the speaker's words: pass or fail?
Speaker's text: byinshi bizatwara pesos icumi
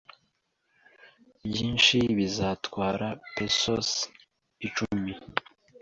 pass